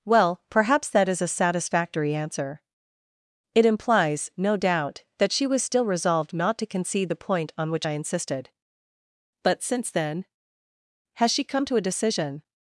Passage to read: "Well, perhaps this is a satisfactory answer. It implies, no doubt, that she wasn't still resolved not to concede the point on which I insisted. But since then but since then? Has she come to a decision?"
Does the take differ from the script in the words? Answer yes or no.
yes